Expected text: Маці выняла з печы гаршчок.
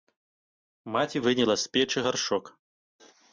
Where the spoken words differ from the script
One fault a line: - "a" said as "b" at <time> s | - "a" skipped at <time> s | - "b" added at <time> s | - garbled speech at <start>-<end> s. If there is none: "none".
none